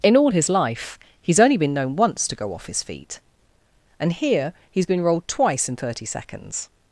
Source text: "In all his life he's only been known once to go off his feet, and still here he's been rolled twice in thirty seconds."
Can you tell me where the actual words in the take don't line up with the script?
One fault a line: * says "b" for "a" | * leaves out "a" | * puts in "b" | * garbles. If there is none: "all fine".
* leaves out "still"